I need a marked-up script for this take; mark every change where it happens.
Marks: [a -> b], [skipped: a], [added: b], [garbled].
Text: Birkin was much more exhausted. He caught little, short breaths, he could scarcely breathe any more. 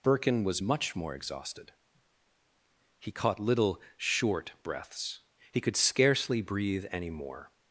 Birkin was much more exhausted. He caught little, short breaths, he could scarcely breathe any more.